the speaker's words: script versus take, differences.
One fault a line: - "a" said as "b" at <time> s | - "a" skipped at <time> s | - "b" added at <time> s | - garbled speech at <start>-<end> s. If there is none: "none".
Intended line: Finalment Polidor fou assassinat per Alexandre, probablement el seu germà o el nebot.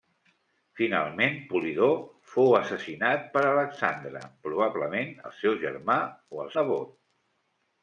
none